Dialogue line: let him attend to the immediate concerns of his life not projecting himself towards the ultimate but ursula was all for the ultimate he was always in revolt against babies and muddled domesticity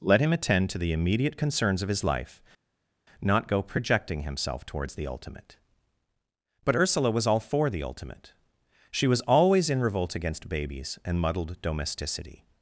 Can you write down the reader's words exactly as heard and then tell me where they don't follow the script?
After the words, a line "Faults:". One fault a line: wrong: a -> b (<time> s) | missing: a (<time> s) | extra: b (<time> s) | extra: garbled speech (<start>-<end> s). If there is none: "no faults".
let him attend to the immediate concerns of his life not go projecting himself towards the ultimate but ursula was all for the ultimate she was always in revolt against babies and muddled domesticity
Faults:
extra: go (3.5 s)
wrong: he -> she (8.9 s)